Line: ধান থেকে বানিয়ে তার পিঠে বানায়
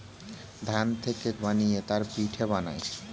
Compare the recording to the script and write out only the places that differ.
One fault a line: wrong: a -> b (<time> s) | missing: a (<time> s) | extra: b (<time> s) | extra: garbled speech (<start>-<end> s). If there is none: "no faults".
no faults